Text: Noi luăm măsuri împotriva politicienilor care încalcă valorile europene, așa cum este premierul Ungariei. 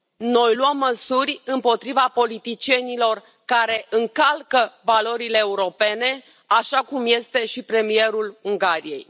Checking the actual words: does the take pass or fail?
fail